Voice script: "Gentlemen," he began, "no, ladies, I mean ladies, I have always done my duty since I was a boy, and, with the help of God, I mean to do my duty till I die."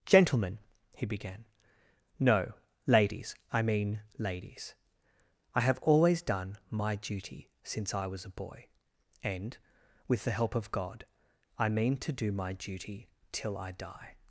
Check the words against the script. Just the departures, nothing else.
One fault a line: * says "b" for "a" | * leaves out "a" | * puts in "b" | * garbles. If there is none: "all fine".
all fine